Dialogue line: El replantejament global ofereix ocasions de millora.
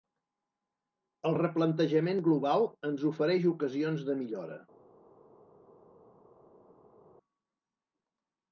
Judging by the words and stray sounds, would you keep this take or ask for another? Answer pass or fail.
fail